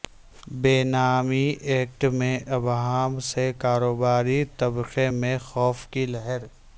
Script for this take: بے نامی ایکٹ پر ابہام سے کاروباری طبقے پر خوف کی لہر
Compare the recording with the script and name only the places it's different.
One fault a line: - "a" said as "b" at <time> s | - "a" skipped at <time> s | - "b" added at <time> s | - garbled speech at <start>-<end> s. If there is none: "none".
- "پر" said as "میں" at 2.1 s
- "پر" said as "میں" at 5.1 s